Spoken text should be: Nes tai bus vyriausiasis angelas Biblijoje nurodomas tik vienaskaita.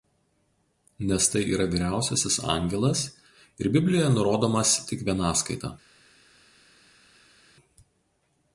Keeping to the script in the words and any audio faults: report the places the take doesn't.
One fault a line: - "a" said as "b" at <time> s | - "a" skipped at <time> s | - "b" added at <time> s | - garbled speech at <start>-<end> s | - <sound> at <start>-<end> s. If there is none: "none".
- "bus" said as "yra" at 1.6 s
- "ir" added at 3.6 s